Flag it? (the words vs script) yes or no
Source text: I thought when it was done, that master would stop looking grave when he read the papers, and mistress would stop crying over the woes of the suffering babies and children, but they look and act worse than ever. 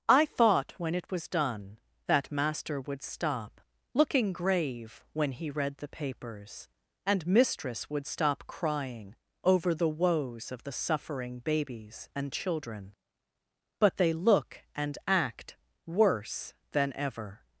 no